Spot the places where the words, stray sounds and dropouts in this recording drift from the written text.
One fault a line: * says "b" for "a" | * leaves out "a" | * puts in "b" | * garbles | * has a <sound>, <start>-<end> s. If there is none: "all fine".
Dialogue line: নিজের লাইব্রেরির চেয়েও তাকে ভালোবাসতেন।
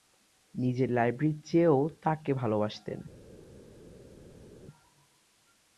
all fine